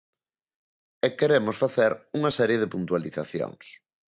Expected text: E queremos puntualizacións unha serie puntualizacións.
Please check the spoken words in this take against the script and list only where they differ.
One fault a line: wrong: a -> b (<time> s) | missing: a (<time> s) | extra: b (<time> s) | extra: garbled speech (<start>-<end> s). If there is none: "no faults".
wrong: puntualizacións -> facer (1.6 s)
extra: de (2.6 s)